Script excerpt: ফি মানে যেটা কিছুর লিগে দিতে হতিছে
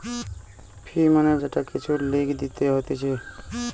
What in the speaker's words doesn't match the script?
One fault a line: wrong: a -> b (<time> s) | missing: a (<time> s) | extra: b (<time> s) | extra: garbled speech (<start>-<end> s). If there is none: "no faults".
no faults